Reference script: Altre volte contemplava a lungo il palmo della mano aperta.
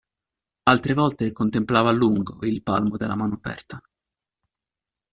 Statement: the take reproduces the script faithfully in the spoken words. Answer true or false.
true